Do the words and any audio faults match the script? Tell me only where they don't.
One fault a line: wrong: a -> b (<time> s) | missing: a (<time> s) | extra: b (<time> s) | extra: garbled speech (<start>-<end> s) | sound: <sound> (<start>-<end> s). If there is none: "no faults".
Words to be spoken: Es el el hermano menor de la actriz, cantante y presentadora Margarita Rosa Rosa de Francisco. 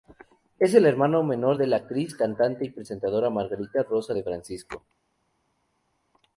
missing: el (0.9 s)
missing: Rosa (4.1 s)